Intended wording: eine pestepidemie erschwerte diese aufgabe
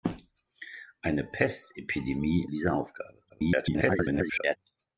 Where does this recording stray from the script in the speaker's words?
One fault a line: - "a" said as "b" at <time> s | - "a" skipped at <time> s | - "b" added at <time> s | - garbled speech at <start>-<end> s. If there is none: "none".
- "erschwerte" skipped at 2.5 s
- garbled speech at 3.3-4.6 s